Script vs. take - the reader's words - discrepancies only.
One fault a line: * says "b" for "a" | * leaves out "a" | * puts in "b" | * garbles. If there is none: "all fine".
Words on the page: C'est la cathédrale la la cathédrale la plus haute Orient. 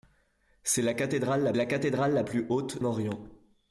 all fine